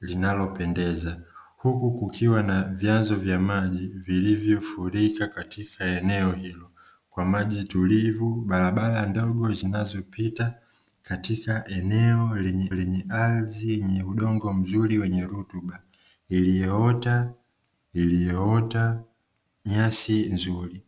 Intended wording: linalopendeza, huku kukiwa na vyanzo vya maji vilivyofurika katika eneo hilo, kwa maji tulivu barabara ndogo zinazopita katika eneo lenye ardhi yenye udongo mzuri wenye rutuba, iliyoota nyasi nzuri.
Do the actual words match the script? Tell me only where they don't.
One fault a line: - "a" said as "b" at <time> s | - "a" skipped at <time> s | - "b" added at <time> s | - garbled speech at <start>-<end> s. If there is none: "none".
- "lenye" added at 12.7 s
- "iliyoota" added at 17.9 s